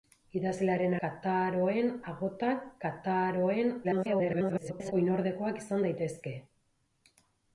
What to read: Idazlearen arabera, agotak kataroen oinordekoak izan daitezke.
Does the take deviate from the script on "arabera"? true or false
true